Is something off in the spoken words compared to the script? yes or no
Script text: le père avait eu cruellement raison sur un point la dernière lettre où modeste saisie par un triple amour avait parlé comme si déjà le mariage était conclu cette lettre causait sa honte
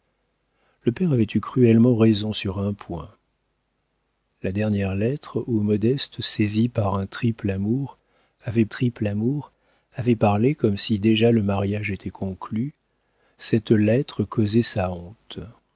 yes